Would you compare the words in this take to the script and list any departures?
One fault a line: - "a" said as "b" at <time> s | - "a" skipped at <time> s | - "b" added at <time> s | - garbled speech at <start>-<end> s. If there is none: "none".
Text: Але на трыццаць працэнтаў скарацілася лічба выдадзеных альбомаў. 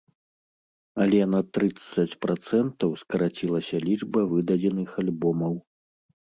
none